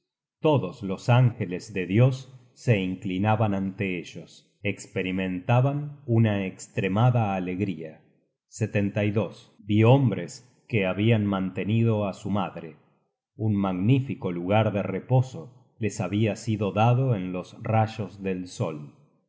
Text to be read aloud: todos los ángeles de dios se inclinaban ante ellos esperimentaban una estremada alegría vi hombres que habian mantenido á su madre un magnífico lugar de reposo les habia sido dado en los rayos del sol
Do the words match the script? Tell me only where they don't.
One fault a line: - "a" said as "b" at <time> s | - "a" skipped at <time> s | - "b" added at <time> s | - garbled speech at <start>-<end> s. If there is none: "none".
none